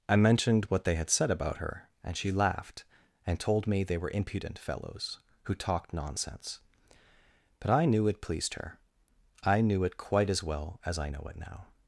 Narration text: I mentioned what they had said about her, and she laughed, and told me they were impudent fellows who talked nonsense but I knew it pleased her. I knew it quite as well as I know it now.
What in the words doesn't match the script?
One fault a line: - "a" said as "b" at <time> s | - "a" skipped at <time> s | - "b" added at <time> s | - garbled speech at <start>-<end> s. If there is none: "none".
none